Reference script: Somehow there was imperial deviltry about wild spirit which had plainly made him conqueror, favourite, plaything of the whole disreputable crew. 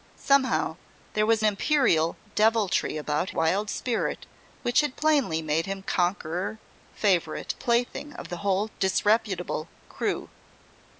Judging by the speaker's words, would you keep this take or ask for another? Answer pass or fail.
pass